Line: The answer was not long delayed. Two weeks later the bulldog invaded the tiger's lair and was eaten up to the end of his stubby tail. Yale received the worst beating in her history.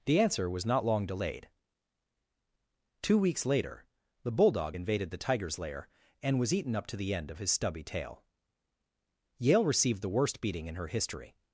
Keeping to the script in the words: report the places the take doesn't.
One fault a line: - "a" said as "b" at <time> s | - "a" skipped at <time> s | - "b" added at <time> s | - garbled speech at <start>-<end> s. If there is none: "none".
none